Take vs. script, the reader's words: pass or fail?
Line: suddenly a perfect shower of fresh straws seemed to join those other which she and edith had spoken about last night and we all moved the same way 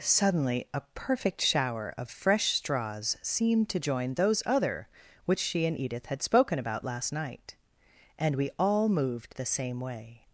pass